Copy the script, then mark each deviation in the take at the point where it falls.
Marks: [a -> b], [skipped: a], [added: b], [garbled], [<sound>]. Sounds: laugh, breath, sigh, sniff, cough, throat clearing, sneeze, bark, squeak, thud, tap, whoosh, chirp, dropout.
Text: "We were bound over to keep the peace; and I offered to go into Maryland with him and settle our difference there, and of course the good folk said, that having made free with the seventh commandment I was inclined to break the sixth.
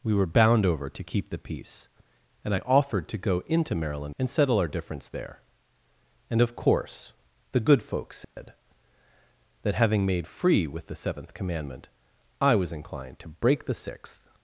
"We were bound over to keep the peace; and I offered to go into Maryland [skipped: with him] and settle our difference there, and of course the good folk said, [dropout] that having made free with the seventh commandment I was inclined to break the sixth.